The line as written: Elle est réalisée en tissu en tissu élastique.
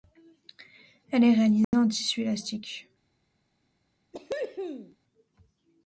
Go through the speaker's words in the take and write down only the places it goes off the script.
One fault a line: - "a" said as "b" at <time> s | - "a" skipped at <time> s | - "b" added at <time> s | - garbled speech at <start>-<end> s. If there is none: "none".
- "en tissu" skipped at 2.2 s